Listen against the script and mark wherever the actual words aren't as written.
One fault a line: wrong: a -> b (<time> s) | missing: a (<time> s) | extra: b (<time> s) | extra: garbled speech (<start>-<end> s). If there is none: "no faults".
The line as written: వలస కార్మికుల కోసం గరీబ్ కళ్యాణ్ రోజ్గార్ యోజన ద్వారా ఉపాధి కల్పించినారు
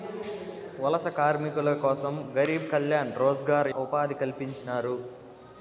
missing: యోజన ద్వారా (3.7 s)